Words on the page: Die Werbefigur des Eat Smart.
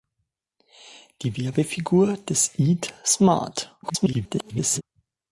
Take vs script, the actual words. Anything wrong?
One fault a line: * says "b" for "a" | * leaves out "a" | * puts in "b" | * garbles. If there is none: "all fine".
* garbles